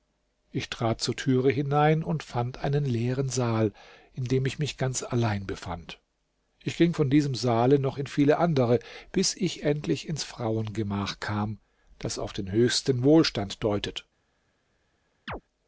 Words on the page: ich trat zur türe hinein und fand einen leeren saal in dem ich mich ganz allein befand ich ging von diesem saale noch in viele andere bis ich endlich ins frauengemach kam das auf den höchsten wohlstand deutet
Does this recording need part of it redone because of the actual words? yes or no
no